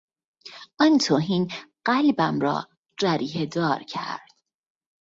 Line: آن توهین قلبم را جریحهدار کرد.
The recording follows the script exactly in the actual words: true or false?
true